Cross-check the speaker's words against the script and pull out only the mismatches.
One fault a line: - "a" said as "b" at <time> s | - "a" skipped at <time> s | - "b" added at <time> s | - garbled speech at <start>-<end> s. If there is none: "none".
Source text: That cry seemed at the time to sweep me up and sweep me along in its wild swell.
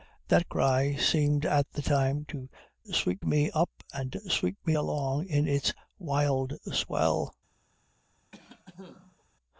none